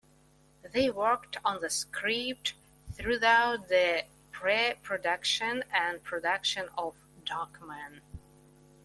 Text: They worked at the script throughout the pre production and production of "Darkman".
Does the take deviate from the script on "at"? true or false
true